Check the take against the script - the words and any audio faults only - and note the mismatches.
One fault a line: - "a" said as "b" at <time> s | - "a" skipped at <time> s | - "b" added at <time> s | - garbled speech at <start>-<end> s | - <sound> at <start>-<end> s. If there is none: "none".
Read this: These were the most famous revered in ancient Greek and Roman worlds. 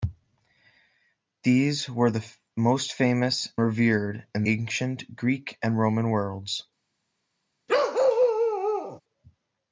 - bark at 7.7-9.0 s